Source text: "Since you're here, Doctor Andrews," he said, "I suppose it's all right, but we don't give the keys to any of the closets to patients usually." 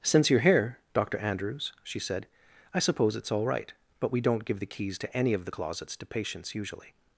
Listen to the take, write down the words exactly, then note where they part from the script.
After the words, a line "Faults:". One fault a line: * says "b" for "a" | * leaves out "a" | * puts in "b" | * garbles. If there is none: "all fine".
"Since you're here, Doctor Andrews," she said, "I suppose it's all right, but we don't give the keys to any of the closets to patients usually."
Faults:
* says "she" for "he"